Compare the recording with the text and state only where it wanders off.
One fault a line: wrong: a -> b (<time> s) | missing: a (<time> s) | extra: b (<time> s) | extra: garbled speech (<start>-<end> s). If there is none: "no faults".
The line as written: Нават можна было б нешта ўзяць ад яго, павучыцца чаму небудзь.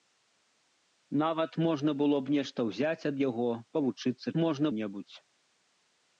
wrong: чаму -> можна (4.4 s)